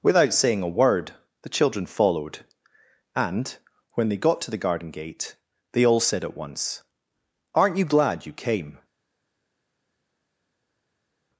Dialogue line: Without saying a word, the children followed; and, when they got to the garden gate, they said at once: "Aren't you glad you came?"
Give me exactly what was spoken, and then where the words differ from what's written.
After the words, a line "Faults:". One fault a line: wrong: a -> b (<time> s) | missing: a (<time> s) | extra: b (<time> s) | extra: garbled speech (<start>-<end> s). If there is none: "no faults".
Without saying a word, the children followed; and, when they got to the garden gate, they all said at once: "Aren't you glad you came?"
Faults:
extra: all (5.8 s)